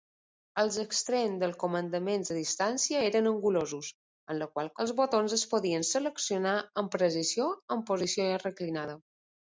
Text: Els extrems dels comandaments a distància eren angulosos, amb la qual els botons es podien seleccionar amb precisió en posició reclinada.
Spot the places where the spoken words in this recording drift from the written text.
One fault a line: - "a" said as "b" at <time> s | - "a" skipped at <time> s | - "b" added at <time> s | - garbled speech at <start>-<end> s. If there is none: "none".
none